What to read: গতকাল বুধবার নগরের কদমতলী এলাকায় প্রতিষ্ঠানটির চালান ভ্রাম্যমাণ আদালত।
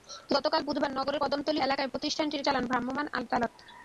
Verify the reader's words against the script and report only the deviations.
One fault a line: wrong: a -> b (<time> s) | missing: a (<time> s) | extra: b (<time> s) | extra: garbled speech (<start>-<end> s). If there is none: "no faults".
no faults